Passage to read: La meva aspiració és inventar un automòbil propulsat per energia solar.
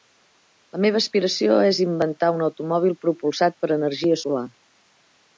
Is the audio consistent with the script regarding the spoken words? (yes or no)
yes